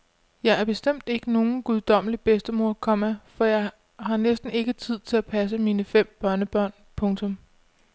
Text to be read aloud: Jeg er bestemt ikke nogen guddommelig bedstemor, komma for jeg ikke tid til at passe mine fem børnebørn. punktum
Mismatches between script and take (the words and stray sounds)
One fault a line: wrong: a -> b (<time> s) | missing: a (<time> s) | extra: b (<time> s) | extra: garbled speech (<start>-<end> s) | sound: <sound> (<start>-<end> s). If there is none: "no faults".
extra: har næsten (4.0 s)